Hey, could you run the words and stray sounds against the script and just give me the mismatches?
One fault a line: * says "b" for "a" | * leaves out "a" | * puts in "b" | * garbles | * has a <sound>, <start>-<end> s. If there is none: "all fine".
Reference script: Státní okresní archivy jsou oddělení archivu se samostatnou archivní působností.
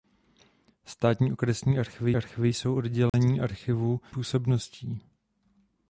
* puts in "archivy"
* has a dropout, 3.1-3.1 s
* leaves out "se samostatnou archivní"